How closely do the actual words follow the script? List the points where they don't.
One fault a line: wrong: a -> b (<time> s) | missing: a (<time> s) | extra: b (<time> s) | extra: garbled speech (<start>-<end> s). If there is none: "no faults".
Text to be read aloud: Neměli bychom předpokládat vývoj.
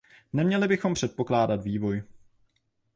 no faults